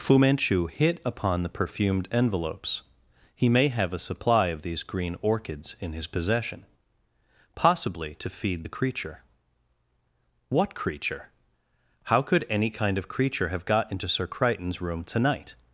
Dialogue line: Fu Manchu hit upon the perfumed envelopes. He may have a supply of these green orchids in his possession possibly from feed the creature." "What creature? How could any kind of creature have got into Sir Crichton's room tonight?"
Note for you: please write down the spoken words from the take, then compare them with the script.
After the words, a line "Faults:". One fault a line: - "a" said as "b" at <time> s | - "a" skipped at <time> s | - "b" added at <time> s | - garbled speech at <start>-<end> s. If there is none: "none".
Fu Manchu hit upon the perfumed envelopes. He may have a supply of these green orchids in his possession possibly to feed the creature." "What creature? How could any kind of creature have got into Sir Crichton's room tonight?"
Faults:
- "from" said as "to" at 8.1 s